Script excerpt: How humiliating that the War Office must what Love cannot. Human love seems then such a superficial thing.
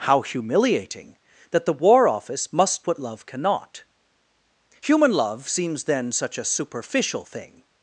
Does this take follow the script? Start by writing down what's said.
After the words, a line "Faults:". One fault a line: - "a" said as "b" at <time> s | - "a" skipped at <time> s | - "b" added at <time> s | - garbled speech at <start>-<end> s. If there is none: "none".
How humiliating that the War Office must what Love cannot. Human love seems then such a superficial thing.
Faults:
none